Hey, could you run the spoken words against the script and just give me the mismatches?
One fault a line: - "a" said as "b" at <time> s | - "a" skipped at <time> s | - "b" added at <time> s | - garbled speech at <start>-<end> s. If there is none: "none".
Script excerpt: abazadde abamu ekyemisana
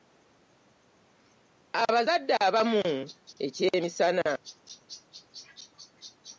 none